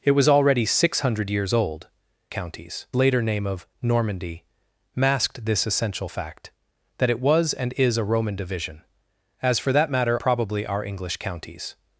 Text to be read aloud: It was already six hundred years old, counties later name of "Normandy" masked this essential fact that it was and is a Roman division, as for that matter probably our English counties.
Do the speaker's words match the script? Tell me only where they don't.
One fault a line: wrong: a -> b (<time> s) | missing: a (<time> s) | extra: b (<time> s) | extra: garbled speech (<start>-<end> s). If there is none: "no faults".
no faults